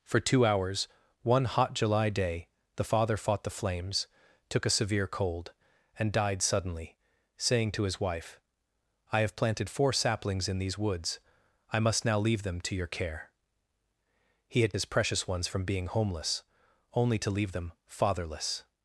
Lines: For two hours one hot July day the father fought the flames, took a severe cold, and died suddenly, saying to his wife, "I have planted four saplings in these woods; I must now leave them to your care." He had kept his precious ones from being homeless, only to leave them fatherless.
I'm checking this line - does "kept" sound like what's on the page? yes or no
no